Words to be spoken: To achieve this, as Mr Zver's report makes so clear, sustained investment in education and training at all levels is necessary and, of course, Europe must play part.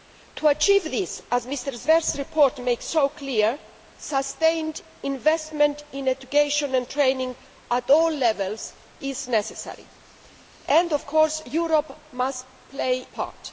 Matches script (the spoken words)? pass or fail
pass